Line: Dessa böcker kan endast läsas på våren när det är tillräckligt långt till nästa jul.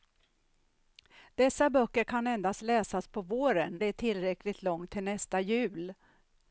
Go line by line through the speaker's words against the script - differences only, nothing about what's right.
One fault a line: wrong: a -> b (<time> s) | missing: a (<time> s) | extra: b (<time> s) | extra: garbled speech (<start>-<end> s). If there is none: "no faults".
missing: när (3.8 s)